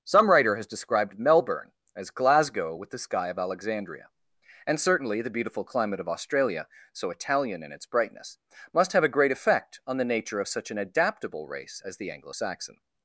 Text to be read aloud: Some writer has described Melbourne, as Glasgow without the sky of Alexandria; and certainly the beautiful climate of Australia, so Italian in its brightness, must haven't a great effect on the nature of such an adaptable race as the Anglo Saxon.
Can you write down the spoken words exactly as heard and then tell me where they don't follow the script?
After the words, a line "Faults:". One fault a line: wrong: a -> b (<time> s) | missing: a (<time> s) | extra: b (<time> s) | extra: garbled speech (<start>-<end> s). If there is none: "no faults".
Some writer has described Melbourne, as Glasgow with the sky of Alexandria; and certainly the beautiful climate of Australia, so Italian in its brightness, must have a great effect on the nature of such an adaptable race as the Anglo Saxon.
Faults:
wrong: without -> with (2.7 s)
wrong: haven't -> have (8.9 s)